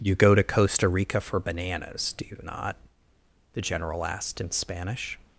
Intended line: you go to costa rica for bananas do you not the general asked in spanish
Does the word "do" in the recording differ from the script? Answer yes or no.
no